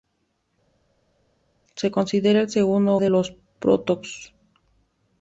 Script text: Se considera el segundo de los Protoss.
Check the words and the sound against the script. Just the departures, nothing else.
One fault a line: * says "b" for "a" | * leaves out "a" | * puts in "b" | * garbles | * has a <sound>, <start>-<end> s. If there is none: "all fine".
all fine